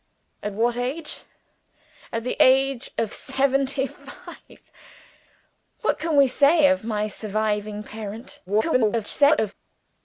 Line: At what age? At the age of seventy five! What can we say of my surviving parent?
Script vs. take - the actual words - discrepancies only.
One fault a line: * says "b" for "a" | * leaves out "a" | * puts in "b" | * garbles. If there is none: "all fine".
* garbles